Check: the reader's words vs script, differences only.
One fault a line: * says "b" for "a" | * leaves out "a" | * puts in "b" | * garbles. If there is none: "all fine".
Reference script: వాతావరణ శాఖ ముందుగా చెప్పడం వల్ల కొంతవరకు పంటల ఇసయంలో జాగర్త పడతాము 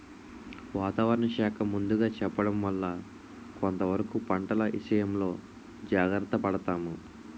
all fine